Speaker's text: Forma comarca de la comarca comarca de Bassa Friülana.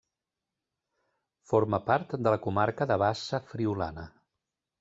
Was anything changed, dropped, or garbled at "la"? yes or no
no